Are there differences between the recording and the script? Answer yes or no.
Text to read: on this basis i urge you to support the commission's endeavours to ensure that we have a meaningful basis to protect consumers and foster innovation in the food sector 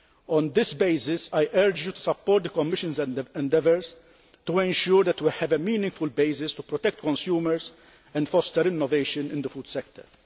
no